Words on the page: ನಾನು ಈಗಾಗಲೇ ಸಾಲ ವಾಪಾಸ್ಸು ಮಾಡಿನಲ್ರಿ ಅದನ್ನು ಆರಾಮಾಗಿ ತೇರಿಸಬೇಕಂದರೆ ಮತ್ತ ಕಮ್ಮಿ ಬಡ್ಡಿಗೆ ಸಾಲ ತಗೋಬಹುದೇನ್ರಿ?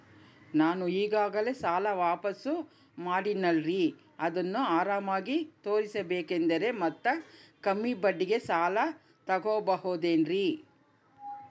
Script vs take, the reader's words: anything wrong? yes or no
no